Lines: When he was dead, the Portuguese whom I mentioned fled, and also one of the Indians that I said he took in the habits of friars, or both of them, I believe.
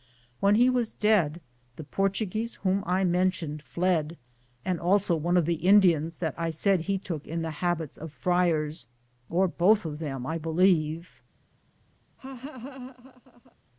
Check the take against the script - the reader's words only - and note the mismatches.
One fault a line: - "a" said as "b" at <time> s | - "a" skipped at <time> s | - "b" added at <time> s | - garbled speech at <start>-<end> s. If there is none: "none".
none